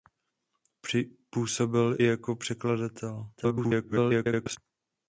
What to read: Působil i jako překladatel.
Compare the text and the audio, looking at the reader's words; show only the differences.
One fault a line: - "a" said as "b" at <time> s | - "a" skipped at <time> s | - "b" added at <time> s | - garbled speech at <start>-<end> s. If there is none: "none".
- "i" skipped at 2.0 s
- garbled speech at 3.4-4.6 s